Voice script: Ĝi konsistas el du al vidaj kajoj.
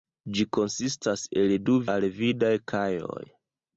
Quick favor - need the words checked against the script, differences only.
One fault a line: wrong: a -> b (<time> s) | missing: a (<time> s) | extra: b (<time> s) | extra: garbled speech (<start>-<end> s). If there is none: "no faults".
no faults